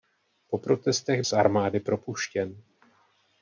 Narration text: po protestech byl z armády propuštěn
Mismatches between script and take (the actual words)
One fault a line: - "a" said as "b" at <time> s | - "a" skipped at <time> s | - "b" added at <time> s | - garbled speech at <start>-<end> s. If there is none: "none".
- "byl" skipped at 1.2 s